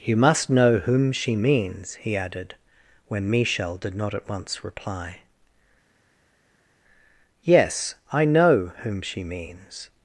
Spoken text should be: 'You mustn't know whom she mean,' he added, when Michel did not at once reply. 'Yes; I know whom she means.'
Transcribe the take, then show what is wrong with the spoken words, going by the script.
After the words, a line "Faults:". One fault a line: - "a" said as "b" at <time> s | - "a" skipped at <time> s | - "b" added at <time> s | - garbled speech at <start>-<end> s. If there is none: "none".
'You must know whom she means,' he added, when Michel did not at once reply. 'Yes; I know whom she means.'
Faults:
- "mustn't" said as "must" at 0.1 s
- "mean" said as "means" at 1.4 s